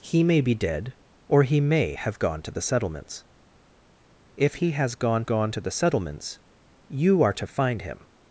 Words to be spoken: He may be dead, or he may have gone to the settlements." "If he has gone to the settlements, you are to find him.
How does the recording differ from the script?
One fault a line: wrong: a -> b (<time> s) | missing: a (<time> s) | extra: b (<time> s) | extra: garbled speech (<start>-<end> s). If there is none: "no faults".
extra: gone (5.2 s)